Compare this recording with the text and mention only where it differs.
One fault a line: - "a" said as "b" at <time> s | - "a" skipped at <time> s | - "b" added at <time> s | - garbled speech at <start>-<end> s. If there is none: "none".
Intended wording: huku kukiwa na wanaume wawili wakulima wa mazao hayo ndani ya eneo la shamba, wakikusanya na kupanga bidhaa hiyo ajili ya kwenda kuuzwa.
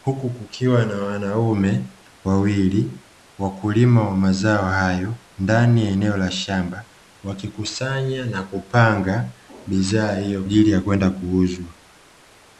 none